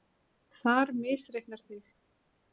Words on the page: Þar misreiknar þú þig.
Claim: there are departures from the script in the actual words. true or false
true